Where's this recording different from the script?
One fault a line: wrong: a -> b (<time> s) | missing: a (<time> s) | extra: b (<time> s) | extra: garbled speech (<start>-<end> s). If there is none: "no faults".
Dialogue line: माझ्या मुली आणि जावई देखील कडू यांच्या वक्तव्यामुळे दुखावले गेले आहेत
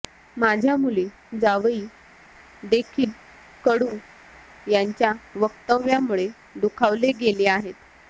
missing: आणि (1.1 s)